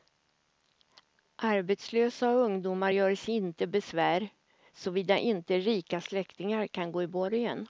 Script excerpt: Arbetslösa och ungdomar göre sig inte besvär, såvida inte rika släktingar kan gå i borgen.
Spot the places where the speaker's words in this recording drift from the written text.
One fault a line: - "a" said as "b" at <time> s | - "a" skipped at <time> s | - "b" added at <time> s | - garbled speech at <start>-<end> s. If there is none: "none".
none